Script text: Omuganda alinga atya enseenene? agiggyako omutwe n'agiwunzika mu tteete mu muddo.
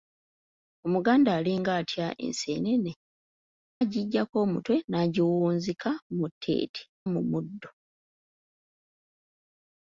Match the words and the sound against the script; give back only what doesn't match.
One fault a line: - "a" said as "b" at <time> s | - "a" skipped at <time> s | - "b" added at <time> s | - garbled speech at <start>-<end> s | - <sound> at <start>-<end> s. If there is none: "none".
none